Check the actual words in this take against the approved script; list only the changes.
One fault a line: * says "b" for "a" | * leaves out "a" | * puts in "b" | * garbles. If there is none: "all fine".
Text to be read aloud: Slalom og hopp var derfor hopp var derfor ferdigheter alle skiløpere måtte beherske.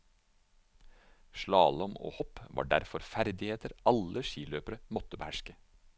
* leaves out "hopp var derfor"